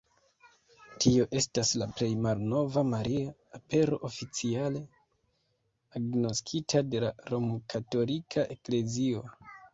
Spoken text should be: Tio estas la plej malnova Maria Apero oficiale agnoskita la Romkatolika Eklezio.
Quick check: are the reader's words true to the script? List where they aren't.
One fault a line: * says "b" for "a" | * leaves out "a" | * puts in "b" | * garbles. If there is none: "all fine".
* puts in "de"